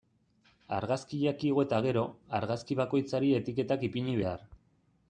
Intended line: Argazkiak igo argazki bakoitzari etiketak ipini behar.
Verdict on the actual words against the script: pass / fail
fail